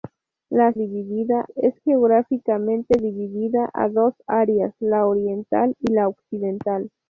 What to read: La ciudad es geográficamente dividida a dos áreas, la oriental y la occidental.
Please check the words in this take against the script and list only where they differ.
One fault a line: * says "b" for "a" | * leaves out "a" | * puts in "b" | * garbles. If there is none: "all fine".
* says "dividida" for "ciudad"